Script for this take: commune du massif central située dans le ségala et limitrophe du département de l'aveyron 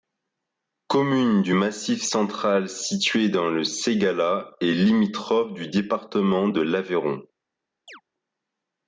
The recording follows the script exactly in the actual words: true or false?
true